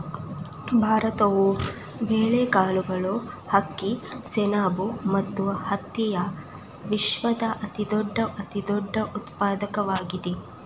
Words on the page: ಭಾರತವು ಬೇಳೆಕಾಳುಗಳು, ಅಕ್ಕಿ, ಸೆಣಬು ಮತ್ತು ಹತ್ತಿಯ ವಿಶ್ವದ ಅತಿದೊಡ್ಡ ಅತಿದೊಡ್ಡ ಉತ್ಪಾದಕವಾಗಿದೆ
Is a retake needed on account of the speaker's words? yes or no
no